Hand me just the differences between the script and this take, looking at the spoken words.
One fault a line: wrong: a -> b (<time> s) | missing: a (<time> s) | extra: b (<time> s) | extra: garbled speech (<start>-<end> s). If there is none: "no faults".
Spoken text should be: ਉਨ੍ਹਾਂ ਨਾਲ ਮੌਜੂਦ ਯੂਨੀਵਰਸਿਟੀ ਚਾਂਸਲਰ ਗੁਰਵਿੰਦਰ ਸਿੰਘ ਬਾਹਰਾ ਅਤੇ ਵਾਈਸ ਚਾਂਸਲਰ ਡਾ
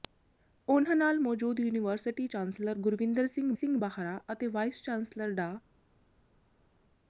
extra: ਸਿੰਘ (3.5 s)